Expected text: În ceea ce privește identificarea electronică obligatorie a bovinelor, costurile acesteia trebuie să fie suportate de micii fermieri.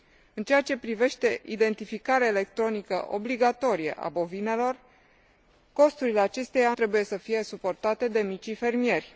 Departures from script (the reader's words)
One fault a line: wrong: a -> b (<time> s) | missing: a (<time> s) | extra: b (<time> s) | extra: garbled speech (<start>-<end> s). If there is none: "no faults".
no faults